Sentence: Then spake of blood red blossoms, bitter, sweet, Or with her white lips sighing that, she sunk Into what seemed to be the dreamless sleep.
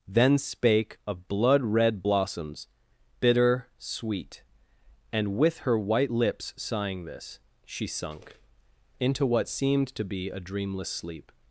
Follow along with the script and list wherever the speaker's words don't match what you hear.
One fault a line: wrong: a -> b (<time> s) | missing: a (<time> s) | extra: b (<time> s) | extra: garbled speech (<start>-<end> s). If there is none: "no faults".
wrong: Or -> And (5.1 s)
wrong: that -> this (7.0 s)
wrong: the -> a (10.3 s)